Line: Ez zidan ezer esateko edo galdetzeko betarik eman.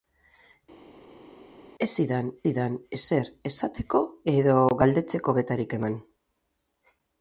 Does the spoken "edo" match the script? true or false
true